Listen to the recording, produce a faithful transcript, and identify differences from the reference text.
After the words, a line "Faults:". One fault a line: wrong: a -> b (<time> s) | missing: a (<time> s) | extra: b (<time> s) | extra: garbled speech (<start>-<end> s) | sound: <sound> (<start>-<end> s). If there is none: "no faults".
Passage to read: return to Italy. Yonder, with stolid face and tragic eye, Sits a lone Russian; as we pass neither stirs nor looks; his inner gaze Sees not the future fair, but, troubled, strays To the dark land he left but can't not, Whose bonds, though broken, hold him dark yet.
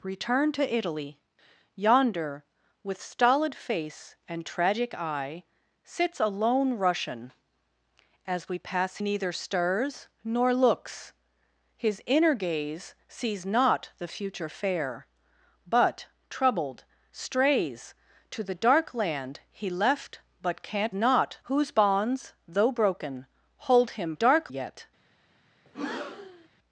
return to Italy. Yonder, with stolid face and tragic eye, Sits a lone Russian; as we pass neither stirs nor looks; his inner gaze Sees not the future fair, but, troubled, strays To the dark land he left but can't not, Whose bonds, though broken, hold him dark yet.
Faults:
sound: breath (25.7-26.5 s)